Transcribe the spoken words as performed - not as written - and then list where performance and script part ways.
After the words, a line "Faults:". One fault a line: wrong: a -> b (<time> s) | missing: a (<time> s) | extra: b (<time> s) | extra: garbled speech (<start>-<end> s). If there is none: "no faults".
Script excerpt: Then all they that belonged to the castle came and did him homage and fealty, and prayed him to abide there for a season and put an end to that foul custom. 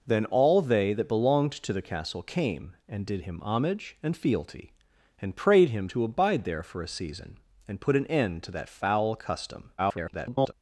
Then all they that belonged to the castle came and did him homage and fealty, and prayed him to abide there for a season and put an end to that foul custom. [garbled]
Faults:
extra: garbled speech (9.8-10.5 s)